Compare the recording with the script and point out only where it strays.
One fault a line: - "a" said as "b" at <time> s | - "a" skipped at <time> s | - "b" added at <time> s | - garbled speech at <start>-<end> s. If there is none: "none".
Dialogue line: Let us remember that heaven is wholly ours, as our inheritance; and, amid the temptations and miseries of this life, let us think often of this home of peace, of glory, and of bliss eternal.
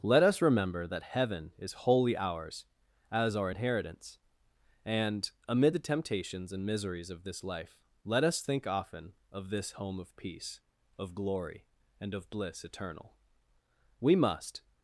- "We must" added at 14.0 s